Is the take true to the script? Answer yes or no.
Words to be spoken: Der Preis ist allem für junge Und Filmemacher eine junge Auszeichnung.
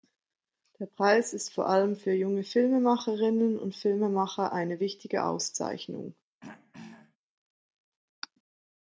no